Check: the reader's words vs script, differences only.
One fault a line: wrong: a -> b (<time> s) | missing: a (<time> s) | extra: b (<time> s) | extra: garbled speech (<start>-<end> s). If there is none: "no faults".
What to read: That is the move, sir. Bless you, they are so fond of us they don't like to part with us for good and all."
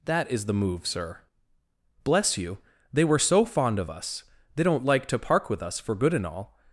wrong: are -> were (3.0 s)
wrong: part -> park (5.2 s)